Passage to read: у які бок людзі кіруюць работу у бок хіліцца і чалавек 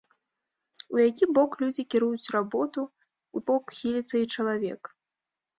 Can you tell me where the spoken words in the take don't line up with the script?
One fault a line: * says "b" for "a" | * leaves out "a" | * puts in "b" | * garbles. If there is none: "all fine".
all fine